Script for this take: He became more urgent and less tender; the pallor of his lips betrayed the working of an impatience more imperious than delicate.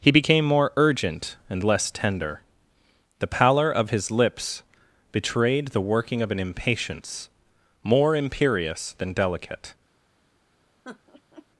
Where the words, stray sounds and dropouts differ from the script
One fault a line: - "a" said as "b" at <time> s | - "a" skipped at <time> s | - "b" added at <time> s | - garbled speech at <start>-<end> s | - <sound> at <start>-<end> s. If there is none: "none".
- laugh at 10.8-11.5 s